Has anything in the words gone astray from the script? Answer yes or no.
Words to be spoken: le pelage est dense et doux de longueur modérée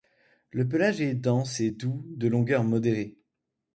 no